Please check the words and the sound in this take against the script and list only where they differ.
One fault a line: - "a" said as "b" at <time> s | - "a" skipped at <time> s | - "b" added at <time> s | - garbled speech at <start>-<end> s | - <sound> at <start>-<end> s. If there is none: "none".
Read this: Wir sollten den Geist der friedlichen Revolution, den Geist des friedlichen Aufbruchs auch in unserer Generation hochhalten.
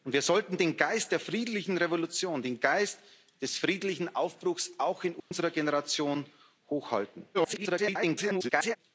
- dropout at 5.2-5.3 s
- garbled speech at 7.3-8.8 s